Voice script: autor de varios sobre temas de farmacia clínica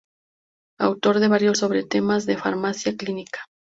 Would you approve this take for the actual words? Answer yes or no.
yes